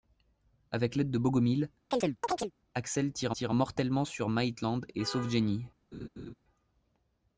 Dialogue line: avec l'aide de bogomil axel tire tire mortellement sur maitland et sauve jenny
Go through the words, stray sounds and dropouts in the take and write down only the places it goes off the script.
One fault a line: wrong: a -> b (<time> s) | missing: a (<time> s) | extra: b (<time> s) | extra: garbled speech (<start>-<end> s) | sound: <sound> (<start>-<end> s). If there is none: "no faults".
sound: chirp (1.9-2.5 s)
sound: laugh (5.9-6.3 s)